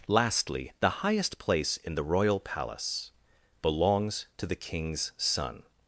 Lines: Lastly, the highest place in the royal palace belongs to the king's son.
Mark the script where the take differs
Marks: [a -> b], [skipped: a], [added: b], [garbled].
Lastly, the highest place in the royal palace belongs to the king's son.